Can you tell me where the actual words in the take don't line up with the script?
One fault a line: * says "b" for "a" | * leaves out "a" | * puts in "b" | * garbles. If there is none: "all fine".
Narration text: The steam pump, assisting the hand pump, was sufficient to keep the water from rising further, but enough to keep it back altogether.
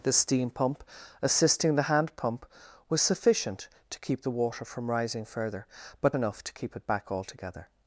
all fine